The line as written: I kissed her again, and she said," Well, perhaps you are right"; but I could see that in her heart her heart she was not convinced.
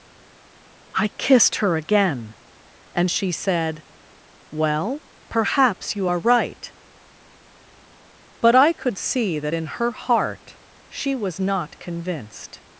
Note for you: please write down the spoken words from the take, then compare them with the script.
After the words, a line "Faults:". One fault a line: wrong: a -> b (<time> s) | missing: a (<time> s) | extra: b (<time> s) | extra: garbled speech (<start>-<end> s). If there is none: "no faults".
I kissed her again, and she said," Well, perhaps you are right"; but I could see that in her heart she was not convinced.
Faults:
missing: her heart (10.6 s)